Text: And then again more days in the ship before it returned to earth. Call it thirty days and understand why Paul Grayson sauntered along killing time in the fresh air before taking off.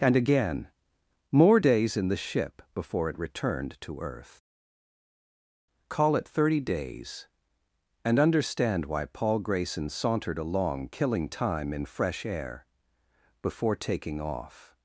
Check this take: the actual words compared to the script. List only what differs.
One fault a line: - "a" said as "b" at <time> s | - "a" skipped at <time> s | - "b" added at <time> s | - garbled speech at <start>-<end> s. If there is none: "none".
- "then" skipped at 0.1 s
- "the" skipped at 11.9 s